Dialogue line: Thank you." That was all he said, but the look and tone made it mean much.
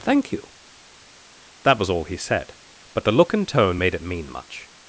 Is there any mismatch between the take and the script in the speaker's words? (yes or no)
no